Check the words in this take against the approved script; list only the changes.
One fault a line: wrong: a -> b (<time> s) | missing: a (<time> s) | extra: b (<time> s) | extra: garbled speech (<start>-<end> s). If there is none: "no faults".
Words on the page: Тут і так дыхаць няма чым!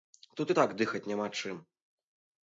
no faults